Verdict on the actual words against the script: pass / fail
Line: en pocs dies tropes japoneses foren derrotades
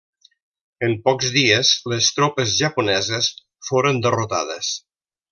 fail